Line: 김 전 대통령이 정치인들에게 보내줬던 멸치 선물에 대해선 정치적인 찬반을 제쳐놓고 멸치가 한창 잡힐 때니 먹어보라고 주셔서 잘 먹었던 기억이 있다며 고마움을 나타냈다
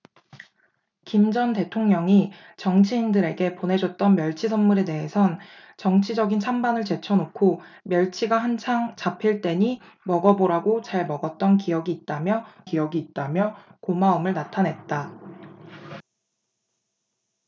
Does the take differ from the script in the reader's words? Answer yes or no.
yes